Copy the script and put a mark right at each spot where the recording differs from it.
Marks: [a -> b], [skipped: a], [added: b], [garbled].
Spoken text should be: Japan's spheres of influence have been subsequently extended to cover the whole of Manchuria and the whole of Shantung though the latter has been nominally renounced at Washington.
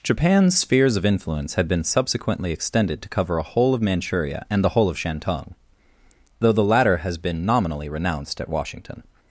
Japan's spheres of influence [have -> had] been subsequently extended to cover [the -> a] whole of Manchuria and the whole of Shantung though the latter has been nominally renounced at Washington.